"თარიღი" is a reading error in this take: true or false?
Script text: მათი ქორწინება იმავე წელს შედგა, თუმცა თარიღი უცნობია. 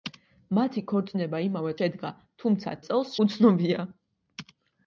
true